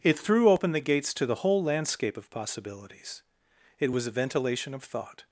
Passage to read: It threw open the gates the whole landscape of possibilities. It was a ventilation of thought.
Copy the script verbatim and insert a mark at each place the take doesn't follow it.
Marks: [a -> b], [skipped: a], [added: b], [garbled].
It threw open the gates [added: to] the whole landscape of possibilities. It was a ventilation of thought.